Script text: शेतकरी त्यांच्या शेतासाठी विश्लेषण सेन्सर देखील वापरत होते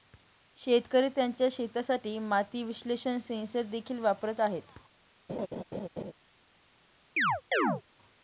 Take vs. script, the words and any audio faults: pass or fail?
fail